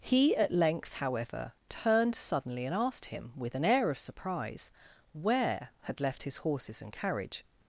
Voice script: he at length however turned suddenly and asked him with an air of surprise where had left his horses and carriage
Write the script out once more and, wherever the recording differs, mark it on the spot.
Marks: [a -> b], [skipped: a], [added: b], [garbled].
he at length however turned suddenly and asked him with an air of surprise where had left his horses and carriage